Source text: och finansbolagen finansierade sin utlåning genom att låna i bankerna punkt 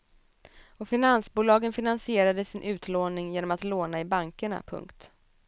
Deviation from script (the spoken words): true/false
false